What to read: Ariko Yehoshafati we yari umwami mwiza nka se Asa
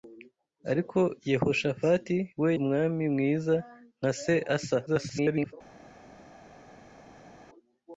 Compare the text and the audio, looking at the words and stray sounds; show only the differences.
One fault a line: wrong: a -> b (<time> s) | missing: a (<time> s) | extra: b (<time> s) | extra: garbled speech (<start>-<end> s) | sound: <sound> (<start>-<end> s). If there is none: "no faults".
missing: yari (2.5 s)
extra: garbled speech (4.9-5.5 s)